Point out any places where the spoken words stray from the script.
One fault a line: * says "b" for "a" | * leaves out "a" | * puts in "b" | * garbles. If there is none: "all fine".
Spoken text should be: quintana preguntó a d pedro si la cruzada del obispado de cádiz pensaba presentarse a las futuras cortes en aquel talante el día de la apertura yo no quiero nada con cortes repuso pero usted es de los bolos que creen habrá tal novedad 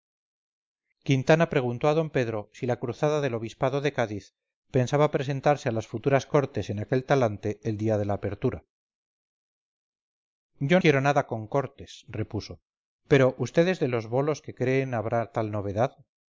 * leaves out "no"